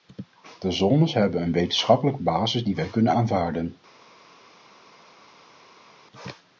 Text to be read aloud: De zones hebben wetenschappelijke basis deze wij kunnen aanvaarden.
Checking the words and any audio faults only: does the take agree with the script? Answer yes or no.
no